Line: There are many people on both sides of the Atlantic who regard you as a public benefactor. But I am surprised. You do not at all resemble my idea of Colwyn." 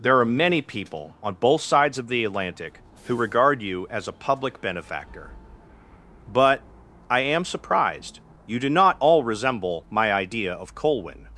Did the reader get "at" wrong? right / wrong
wrong